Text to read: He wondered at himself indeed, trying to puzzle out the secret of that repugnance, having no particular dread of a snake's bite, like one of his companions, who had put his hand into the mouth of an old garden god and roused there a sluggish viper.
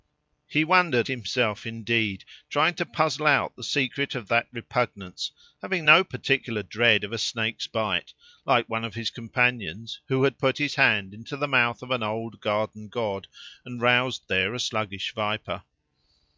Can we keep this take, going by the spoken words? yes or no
no